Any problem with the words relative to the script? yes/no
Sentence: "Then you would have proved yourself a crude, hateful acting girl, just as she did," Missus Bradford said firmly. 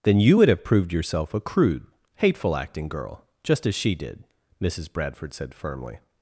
no